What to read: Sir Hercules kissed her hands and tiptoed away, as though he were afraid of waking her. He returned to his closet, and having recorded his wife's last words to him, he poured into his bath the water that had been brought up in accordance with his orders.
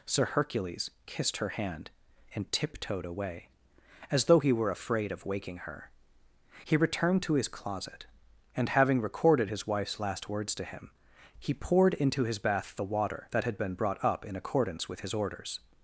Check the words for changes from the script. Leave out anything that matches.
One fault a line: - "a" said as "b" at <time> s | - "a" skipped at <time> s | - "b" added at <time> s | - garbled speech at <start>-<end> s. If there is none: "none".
- "hands" said as "hand" at 1.5 s